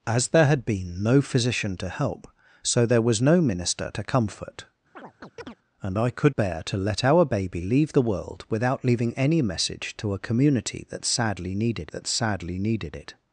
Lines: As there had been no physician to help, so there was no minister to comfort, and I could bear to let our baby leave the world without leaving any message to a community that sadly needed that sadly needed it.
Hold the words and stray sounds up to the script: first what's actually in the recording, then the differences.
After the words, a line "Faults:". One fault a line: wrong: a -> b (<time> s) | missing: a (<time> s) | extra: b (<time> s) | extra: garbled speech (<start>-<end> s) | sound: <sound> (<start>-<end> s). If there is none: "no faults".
As there had been no physician to help, so there was no minister to comfort, and I could bear to let our baby leave the world without leaving any message to a community that sadly needed that sadly needed it.
Faults:
sound: chirp (5.0-5.6 s)